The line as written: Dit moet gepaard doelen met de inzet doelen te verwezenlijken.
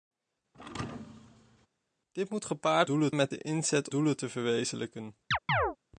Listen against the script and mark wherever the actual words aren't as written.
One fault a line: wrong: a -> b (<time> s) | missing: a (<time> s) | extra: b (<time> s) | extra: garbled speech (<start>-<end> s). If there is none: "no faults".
no faults